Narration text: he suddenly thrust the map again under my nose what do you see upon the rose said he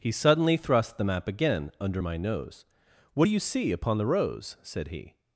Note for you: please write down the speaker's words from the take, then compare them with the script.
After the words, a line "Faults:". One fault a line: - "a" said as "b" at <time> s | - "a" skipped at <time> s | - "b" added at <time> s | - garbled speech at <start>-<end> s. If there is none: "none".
he suddenly thrust the map again under my nose what do you see upon the rose said he
Faults:
none